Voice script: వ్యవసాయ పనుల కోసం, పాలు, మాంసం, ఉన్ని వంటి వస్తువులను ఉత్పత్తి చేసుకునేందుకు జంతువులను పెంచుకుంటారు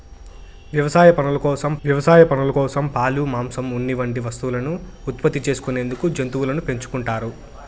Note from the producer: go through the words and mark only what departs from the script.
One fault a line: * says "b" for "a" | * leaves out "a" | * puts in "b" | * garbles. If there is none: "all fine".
* puts in "వ్యవసాయ పనుల కోసం"